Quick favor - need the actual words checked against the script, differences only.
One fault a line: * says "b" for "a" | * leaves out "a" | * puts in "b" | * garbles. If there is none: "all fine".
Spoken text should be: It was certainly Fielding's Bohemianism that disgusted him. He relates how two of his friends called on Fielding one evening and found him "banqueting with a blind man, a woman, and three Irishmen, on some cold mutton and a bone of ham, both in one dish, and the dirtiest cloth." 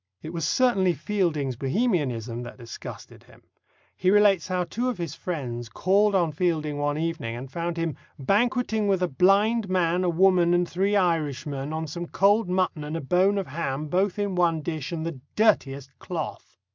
all fine